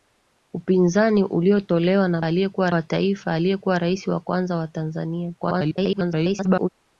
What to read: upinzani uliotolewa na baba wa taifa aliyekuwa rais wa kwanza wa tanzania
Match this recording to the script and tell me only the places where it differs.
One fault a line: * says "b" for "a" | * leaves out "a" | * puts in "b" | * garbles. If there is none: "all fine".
* says "aliyekuwa" for "baba"
* garbles